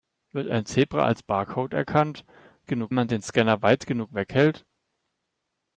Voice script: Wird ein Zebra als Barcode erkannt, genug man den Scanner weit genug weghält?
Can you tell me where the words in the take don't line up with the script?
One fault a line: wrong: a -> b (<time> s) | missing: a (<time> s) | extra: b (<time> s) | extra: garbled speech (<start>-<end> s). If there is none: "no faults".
no faults